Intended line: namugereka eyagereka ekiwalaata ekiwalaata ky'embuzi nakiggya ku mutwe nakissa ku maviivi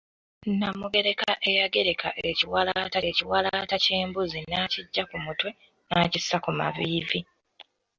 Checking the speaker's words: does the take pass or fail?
pass